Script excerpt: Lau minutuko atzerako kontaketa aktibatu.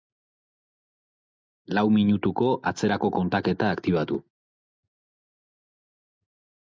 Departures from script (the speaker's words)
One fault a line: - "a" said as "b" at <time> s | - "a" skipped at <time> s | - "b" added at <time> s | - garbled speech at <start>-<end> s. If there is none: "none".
none